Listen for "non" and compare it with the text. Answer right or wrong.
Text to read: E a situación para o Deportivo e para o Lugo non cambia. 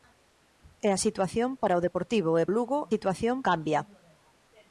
wrong